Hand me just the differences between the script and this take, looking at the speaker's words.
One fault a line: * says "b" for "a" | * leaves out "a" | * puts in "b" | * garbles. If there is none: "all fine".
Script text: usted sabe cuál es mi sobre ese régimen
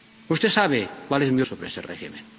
all fine